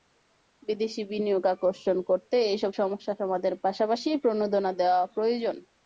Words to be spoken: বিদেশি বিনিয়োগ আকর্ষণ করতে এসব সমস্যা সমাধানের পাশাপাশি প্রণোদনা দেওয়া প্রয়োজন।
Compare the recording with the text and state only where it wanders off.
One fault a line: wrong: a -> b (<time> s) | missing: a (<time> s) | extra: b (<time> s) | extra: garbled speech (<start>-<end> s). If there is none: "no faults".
no faults